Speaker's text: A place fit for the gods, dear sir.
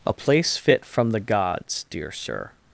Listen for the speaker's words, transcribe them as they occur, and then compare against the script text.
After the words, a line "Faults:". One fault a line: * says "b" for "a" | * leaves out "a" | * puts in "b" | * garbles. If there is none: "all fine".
A place fit from the gods, dear sir.
Faults:
* says "from" for "for"